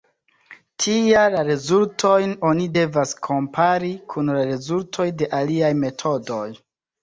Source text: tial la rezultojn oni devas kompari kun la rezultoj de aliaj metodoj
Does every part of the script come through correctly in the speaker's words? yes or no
yes